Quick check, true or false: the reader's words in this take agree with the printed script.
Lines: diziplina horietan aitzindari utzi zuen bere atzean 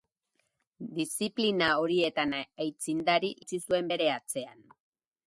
true